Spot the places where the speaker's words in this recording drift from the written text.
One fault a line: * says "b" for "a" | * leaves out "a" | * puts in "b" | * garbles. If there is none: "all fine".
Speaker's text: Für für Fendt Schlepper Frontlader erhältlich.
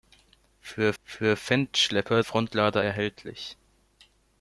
all fine